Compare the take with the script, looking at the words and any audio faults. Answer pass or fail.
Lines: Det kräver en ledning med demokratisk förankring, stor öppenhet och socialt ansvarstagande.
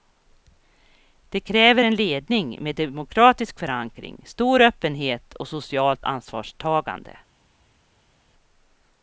pass